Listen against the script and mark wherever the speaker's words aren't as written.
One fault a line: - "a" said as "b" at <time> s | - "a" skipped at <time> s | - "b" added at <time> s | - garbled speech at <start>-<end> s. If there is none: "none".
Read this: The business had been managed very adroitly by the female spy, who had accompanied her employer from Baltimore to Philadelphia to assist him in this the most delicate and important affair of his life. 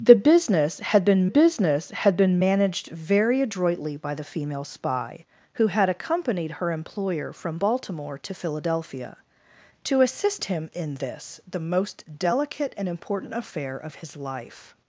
- "business had been" added at 1.2 s